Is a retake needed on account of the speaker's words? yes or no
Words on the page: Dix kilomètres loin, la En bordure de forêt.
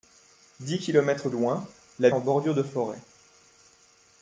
no